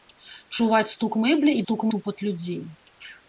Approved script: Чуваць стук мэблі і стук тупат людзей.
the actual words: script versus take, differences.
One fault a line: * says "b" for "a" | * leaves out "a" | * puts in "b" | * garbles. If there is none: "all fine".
all fine